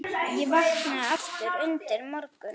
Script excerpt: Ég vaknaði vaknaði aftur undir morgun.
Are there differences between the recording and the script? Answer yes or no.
yes